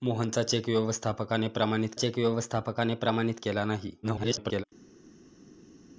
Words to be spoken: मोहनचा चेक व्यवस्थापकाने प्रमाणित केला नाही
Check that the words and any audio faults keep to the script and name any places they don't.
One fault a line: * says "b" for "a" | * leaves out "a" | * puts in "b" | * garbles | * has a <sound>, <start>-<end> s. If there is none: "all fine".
* puts in "चेक व्यवस्थापकाने प्रमाणित"
* garbles